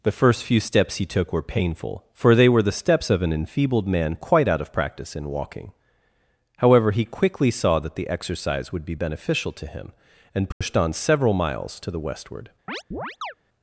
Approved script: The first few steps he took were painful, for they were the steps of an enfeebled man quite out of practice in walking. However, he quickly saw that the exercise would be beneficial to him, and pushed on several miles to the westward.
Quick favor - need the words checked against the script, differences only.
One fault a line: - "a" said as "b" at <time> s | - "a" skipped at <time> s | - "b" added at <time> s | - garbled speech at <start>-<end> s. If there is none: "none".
none